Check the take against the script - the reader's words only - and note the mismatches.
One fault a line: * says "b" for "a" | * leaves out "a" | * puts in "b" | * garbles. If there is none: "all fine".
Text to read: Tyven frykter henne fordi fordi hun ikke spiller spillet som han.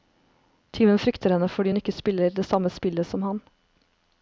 * leaves out "fordi"
* puts in "det samme"